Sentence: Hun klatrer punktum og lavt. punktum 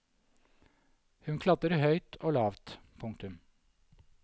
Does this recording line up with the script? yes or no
no